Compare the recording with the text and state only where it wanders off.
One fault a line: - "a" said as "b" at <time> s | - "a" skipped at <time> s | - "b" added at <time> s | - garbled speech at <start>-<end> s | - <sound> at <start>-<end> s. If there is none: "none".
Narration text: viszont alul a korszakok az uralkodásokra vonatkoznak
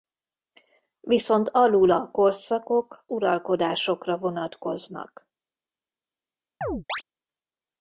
- "az" skipped at 3.1 s
- chirp at 6.6-7.0 s